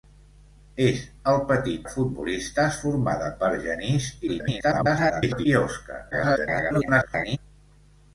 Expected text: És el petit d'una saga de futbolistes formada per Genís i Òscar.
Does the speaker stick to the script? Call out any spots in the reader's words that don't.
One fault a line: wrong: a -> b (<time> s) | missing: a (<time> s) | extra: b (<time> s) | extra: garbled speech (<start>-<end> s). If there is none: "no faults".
missing: d'una saga (1.8 s)
extra: garbled speech (4.3-5.5 s)
extra: garbled speech (6.1-7.4 s)